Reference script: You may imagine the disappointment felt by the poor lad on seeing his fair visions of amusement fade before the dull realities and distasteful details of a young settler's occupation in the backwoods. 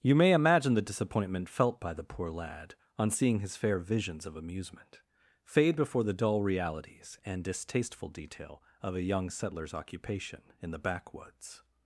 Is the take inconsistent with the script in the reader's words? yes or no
yes